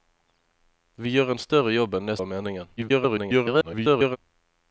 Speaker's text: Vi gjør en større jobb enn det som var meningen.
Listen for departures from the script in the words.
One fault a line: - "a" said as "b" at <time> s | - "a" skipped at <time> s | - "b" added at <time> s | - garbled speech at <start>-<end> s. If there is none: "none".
- "som" skipped at 2.2 s
- garbled speech at 2.8-4.2 s